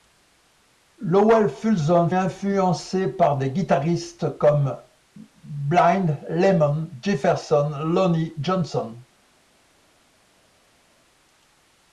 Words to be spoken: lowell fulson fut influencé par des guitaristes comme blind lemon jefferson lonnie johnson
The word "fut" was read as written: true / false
false